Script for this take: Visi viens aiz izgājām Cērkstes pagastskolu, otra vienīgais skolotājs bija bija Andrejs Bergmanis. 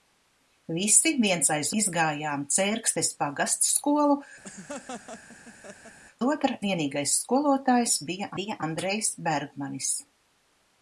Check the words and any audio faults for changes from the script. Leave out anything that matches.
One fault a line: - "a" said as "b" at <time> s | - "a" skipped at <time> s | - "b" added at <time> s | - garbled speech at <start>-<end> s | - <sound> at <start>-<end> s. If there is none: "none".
- laugh at 4.4-6.0 s